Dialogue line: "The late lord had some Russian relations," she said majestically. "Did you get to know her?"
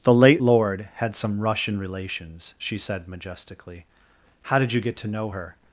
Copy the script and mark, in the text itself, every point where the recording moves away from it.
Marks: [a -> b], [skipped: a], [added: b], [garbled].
"The late lord had some Russian relations," she said majestically. [added: How] "Did you get to know her?"